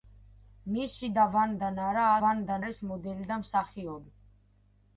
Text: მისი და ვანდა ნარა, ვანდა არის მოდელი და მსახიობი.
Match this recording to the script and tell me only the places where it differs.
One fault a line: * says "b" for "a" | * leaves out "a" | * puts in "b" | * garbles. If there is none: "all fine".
all fine